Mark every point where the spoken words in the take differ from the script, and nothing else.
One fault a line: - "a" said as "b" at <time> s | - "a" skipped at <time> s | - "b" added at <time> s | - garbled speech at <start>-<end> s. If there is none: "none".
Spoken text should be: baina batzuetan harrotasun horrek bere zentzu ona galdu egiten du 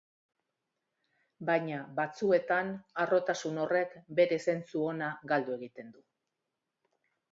none